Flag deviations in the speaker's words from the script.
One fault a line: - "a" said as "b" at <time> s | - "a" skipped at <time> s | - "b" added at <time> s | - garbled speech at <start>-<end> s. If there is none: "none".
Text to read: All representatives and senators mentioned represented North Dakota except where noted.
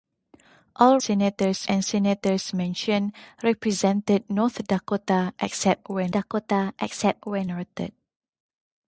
- "representatives" said as "senators" at 1.0 s
- "Dakota except where" added at 6.1 s